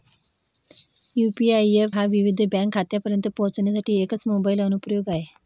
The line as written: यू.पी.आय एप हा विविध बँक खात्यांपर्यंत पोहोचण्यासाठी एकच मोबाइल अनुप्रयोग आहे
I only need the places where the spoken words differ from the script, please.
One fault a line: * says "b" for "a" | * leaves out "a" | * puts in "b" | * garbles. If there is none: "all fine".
all fine